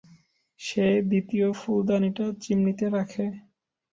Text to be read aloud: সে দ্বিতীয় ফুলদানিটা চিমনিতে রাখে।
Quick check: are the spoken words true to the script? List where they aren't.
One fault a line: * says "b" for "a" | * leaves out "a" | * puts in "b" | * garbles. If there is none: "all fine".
all fine